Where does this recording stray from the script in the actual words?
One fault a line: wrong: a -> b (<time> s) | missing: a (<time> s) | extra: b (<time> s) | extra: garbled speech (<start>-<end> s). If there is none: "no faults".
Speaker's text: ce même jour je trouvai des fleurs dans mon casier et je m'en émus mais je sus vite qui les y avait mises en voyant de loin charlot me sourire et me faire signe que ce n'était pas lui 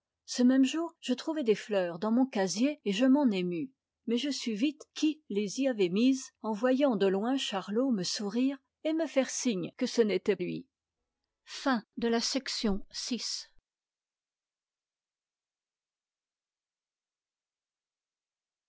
missing: pas (10.4 s)